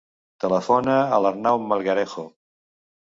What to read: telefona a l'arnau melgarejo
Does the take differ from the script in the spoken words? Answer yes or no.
no